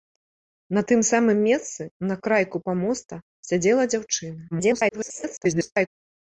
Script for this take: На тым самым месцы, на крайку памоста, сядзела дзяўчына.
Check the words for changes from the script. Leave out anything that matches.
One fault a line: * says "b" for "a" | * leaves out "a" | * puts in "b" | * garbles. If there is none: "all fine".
* garbles